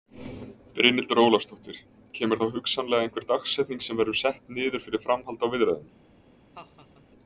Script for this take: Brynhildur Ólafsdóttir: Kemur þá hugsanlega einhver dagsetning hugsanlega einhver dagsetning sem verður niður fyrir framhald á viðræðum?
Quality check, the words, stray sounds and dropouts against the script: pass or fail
fail